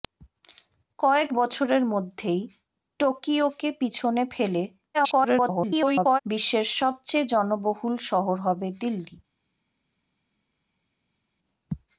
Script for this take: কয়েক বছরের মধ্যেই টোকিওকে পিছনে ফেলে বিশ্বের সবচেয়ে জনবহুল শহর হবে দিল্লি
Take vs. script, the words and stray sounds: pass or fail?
fail